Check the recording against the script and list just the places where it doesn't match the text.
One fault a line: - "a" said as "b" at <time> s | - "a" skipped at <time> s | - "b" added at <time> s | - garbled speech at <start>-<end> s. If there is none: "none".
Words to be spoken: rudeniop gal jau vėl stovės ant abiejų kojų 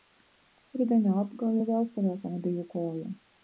none